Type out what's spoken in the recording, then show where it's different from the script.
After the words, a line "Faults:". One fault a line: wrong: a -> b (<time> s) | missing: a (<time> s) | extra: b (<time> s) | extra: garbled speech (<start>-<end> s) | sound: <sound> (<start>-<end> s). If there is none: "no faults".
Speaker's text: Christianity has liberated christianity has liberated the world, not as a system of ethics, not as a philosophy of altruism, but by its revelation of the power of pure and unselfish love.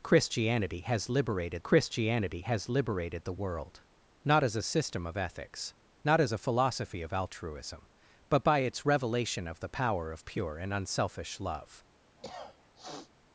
Christianity has liberated christianity has liberated the world, not as a system of ethics, not as a philosophy of altruism, but by its revelation of the power of pure and unselfish love.
Faults:
sound: cough (12.2-13.1 s)